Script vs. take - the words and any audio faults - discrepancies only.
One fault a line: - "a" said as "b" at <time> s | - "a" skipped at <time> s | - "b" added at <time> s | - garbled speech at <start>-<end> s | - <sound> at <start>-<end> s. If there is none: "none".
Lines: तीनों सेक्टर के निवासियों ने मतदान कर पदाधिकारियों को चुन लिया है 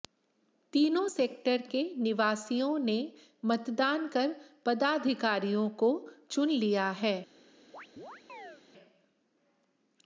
- chirp at 7.7-8.6 s